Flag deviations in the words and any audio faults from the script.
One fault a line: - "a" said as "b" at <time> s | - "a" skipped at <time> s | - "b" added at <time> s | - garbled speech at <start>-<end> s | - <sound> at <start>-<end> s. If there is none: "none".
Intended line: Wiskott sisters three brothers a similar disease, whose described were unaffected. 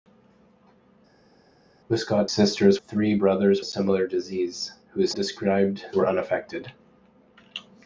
none